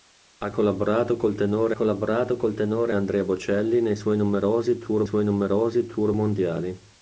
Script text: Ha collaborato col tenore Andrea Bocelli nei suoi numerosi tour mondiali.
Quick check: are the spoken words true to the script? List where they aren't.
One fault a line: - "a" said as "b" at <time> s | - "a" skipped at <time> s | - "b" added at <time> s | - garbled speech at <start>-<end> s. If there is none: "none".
- "collaborato col tenore" added at 1.7 s
- "suoi numerosi tour" added at 5.0 s